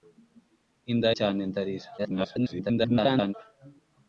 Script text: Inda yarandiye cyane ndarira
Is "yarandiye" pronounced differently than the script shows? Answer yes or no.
yes